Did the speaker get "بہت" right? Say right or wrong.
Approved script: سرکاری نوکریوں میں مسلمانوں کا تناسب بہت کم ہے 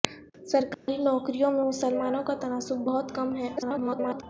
right